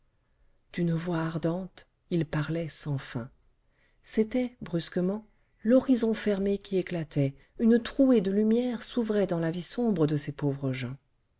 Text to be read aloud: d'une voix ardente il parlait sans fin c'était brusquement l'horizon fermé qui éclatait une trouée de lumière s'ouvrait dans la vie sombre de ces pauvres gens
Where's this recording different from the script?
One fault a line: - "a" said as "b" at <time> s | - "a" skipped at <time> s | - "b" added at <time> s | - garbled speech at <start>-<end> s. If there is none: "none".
none